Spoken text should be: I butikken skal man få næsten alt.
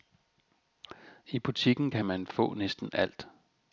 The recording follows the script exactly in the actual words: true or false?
false